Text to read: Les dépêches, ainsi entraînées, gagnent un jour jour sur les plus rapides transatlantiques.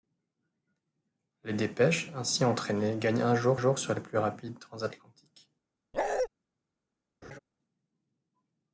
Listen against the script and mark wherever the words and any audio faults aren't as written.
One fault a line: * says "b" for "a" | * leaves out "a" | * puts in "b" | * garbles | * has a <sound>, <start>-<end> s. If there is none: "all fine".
* has a bark, 5.9-6.3 s
* has a laugh, 7.2-7.4 s